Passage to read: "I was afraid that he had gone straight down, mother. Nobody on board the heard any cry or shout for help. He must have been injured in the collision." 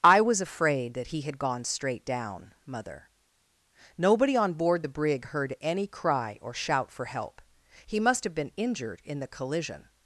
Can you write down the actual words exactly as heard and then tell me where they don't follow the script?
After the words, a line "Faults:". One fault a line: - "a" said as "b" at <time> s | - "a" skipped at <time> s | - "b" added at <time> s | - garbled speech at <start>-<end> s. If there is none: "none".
"I was afraid that he had gone straight down, mother. Nobody on board the brig heard any cry or shout for help. He must have been injured in the collision."
Faults:
- "brig" added at 4.9 s